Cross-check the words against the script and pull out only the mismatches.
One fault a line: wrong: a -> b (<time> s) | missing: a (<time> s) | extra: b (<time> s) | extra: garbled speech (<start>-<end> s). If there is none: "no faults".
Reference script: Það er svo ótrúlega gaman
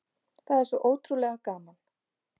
no faults